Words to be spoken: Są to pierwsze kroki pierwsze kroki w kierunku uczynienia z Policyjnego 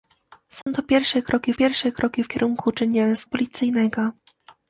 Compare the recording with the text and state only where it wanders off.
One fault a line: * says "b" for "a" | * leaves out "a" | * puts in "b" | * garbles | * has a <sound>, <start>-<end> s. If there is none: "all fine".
* has a dropout, 0.6-0.7 s